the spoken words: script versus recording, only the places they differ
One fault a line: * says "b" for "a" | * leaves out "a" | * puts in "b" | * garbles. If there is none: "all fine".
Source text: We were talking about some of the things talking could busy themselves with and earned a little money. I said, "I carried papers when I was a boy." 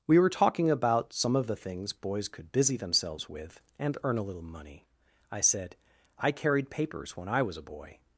* says "boys" for "talking"
* says "earn" for "earned"